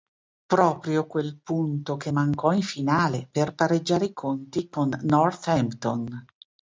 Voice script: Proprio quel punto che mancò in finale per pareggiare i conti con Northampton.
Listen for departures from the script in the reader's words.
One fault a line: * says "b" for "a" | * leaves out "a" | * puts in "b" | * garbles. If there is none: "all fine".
all fine